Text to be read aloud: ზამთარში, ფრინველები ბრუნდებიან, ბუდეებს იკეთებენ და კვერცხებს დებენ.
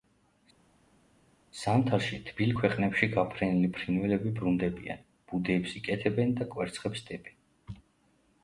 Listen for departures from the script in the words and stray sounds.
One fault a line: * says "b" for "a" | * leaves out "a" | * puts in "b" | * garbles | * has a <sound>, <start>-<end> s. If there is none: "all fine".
* puts in "თბილ ქვეყნებში გაფრენილი"